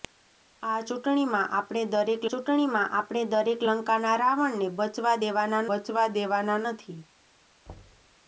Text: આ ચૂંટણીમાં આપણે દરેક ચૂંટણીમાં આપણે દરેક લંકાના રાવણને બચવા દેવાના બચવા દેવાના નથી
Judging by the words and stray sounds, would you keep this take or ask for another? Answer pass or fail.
fail